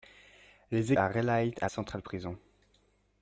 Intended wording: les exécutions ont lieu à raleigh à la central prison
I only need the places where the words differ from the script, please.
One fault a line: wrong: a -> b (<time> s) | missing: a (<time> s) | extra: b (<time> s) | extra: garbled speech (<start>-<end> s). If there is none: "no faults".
missing: exécutions ont lieu (0.9 s)
missing: la (1.7 s)